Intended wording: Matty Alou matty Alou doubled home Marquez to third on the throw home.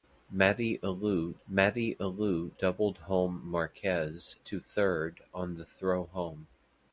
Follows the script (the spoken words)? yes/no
yes